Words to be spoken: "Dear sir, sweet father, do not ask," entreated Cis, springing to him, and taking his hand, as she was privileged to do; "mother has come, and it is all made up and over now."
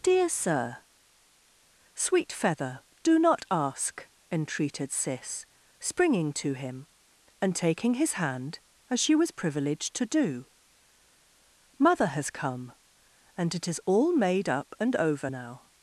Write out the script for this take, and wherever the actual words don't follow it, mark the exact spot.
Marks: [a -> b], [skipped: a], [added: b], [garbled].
"Dear sir, sweet [father, -> feather] do not ask," entreated Cis, springing to him, and taking his hand, as she was privileged to do; "mother has come, and it is all made up and over now."